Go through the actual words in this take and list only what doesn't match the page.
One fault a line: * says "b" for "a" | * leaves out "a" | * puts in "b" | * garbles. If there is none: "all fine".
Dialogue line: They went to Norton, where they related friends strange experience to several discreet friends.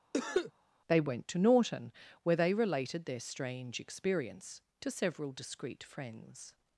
* says "their" for "friends"